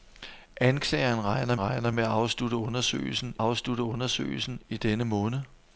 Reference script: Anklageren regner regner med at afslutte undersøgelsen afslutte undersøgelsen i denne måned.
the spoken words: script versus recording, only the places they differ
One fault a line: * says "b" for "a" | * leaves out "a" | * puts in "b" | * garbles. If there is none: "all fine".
all fine